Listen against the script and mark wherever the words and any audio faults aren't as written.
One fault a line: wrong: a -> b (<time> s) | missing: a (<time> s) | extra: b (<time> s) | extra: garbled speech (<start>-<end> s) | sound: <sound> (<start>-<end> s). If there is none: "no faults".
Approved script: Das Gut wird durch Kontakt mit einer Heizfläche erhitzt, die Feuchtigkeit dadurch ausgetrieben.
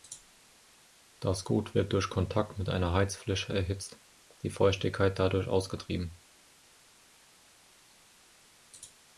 no faults